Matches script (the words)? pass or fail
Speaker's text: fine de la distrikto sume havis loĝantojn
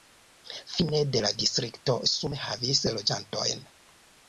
pass